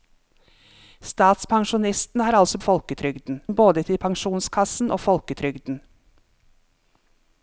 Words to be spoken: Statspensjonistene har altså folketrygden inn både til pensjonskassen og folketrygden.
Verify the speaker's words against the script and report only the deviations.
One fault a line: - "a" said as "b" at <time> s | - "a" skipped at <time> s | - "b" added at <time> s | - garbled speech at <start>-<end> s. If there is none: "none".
none